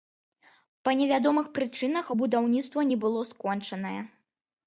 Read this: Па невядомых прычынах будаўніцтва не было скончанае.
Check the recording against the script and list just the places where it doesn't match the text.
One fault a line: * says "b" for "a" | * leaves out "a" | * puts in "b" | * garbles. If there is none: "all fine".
all fine